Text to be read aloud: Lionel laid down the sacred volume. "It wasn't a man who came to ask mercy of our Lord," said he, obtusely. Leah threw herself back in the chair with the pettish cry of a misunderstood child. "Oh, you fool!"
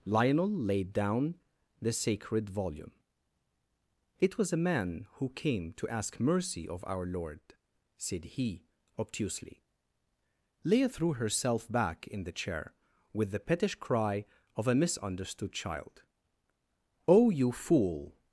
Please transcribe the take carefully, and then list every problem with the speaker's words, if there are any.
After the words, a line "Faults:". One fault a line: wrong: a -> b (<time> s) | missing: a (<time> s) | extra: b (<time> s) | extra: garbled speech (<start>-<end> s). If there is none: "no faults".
Lionel laid down the sacred volume. "It was a man who came to ask mercy of our Lord," said he, obtusely. Leah threw herself back in the chair with the pettish cry of a misunderstood child. "Oh, you fool!"
Faults:
wrong: wasn't -> was (4.3 s)